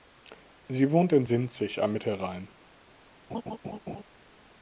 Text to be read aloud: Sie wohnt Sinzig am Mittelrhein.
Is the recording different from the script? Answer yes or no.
yes